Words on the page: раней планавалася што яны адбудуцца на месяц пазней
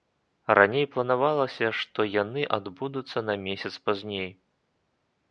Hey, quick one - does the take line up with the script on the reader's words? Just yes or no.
yes